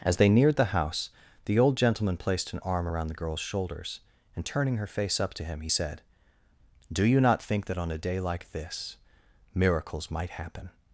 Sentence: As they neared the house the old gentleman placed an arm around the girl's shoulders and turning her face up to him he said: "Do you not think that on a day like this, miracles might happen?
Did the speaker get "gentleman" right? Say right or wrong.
right